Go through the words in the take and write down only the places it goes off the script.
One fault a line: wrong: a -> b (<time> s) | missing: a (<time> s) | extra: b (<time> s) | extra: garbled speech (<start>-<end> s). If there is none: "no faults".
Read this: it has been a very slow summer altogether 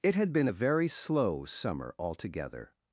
wrong: has -> had (0.1 s)